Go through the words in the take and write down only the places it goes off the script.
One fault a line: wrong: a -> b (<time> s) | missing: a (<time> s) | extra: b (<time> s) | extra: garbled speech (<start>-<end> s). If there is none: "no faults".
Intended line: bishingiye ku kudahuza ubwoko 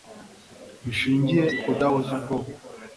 no faults